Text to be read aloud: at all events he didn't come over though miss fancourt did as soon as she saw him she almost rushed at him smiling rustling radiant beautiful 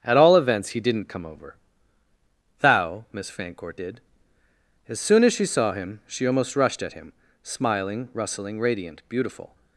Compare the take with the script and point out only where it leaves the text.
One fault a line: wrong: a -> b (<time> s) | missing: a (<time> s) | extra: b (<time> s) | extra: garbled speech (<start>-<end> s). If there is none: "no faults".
wrong: though -> thou (2.6 s)